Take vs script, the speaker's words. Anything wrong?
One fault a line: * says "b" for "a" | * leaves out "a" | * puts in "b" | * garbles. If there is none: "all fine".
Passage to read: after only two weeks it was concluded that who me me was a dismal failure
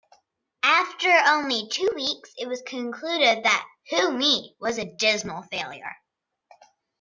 * leaves out "me"